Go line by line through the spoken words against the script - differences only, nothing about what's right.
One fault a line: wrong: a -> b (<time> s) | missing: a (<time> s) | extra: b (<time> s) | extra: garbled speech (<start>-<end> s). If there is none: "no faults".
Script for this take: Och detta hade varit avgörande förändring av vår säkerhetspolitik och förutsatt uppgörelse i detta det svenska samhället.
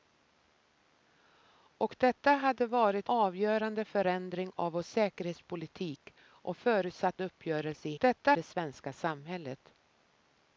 no faults